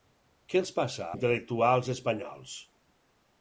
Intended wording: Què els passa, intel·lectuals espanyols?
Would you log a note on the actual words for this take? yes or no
no